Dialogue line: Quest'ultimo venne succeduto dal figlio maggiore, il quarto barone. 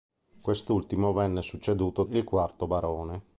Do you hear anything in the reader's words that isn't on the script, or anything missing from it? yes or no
yes